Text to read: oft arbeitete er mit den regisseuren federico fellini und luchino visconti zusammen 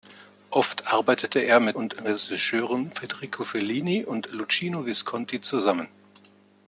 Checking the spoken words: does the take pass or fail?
fail